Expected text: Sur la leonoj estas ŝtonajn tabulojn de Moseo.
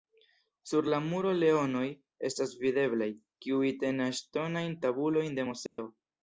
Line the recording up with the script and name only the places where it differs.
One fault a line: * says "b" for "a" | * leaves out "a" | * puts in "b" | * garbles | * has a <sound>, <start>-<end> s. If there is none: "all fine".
* puts in "muro"
* puts in "videblaj kiuj tenas"
* has a dropout, 5.7-5.8 s